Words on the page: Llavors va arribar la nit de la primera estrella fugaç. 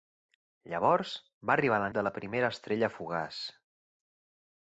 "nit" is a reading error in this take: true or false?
true